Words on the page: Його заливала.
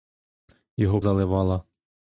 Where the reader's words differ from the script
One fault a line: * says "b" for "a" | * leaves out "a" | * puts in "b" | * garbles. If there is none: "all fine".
all fine